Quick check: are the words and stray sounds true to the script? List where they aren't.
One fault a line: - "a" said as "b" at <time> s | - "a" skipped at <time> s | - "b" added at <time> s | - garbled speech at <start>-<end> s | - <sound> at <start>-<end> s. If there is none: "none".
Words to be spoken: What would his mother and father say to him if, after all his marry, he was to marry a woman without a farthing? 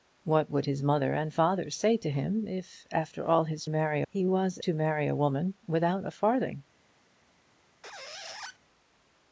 - squeak at 7.8-8.6 s